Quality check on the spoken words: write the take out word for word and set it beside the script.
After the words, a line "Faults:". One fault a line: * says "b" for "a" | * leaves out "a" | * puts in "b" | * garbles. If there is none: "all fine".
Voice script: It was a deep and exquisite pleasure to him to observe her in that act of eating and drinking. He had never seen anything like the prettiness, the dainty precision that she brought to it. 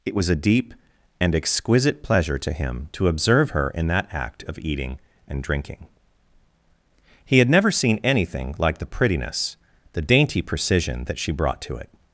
It was a deep and exquisite pleasure to him to observe her in that act of eating and drinking. He had never seen anything like the prettiness, the dainty precision that she brought to it.
Faults:
all fine